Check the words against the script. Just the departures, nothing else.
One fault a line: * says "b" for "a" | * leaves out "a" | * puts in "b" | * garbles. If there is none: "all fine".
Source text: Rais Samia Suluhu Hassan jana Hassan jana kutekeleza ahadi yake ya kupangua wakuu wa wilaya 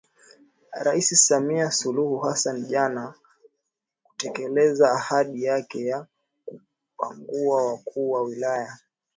* leaves out "Hassan jana"